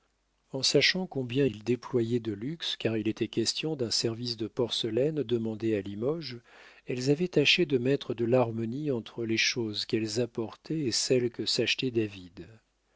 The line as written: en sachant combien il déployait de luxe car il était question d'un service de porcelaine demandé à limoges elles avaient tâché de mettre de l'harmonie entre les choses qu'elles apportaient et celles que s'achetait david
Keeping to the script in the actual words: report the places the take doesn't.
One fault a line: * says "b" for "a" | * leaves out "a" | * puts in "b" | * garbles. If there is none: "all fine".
all fine